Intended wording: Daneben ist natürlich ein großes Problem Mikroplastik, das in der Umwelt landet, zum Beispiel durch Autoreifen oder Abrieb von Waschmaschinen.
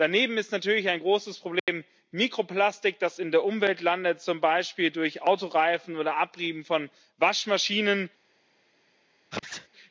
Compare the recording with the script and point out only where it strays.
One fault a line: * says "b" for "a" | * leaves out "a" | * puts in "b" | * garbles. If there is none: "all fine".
all fine